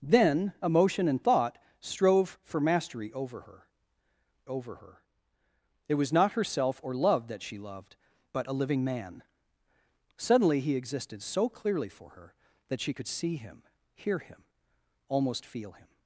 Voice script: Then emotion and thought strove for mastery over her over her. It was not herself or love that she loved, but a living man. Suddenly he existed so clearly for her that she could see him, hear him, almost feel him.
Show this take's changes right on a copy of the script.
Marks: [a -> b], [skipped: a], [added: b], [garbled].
Then emotion and thought strove for mastery over her over her. It was not herself or love that she loved, but a living man. Suddenly he existed so clearly for her that she could see him, hear him, almost feel him.